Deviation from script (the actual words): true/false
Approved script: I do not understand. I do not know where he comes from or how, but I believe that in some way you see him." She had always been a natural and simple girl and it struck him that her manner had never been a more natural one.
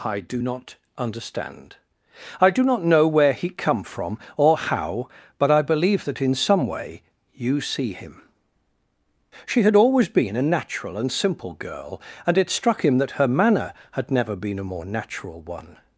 true